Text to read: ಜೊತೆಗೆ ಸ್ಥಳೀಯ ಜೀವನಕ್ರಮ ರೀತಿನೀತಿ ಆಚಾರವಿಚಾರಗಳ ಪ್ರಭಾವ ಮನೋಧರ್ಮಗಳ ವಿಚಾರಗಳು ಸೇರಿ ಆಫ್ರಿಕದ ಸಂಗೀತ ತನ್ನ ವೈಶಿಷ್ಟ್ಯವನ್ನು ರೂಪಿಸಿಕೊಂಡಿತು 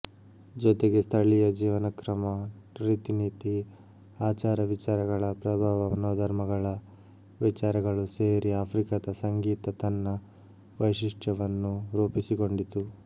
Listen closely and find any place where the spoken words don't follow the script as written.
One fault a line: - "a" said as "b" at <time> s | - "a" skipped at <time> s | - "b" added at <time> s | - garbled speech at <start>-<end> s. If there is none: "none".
none